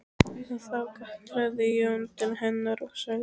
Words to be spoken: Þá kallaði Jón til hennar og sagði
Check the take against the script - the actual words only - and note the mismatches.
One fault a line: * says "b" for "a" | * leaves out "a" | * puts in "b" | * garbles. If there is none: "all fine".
all fine